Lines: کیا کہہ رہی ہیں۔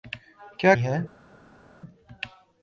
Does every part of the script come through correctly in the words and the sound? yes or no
no